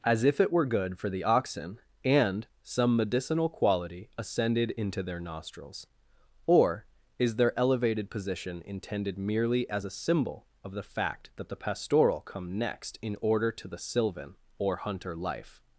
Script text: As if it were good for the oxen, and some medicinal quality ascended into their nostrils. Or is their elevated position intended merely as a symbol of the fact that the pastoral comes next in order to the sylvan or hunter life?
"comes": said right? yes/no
no